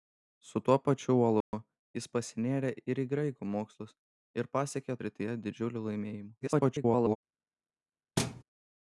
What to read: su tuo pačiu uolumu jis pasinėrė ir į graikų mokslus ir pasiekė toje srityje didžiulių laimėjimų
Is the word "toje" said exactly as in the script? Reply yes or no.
no